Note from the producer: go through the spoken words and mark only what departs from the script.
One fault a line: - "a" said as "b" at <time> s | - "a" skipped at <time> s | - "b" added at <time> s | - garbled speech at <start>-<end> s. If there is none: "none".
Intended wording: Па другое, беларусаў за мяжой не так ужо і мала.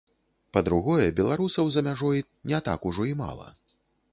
none